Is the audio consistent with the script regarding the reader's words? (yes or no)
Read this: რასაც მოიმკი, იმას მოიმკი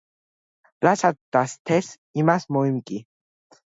no